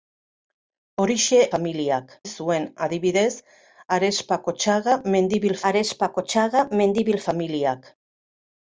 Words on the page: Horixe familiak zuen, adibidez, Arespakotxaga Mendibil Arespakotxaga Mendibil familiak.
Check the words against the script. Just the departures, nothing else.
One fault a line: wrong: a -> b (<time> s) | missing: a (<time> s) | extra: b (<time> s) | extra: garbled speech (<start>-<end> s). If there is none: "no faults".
no faults